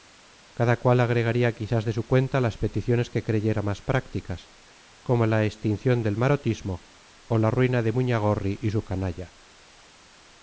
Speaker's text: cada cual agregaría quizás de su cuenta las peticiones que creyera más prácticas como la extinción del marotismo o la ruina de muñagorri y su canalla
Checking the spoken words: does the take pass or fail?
pass